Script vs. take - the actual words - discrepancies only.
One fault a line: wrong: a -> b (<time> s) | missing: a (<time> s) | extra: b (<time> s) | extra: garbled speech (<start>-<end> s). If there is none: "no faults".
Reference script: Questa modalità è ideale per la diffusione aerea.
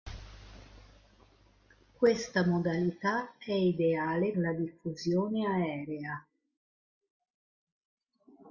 missing: per (4.3 s)